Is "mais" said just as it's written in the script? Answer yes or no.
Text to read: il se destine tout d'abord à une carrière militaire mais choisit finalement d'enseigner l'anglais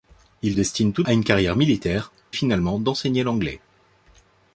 no